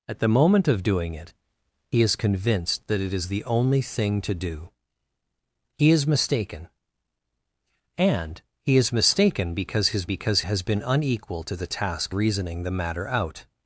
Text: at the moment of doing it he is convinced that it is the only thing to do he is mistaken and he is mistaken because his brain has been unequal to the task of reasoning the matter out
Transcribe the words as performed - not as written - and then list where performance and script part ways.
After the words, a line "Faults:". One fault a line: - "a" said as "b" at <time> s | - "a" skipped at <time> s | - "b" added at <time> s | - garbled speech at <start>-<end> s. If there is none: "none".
at the moment of doing it he is convinced that it is the only thing to do he is mistaken and he is mistaken because his because has been unequal to the task reasoning the matter out
Faults:
- "brain" said as "because" at 10.1 s
- "of" skipped at 12.1 s